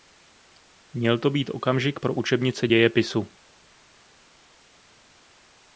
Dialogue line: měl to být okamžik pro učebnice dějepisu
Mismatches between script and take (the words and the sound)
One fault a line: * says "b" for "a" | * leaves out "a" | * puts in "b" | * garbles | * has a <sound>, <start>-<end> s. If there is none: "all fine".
all fine